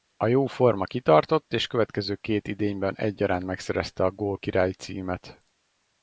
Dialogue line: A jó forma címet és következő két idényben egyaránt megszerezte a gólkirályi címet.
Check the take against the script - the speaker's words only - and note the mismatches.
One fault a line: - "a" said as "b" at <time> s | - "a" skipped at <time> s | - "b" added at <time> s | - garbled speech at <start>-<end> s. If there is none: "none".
- "címet" said as "kitartott" at 0.8 s